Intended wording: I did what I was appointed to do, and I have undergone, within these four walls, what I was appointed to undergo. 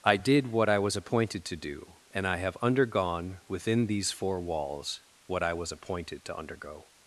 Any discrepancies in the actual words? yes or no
no